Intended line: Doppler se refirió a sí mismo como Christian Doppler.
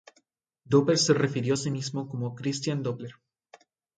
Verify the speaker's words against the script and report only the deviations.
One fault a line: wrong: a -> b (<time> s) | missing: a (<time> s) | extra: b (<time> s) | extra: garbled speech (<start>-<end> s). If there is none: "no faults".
no faults